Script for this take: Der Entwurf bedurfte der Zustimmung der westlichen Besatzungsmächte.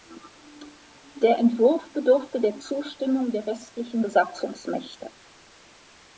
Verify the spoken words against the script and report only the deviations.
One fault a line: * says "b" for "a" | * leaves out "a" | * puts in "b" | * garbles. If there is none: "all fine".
all fine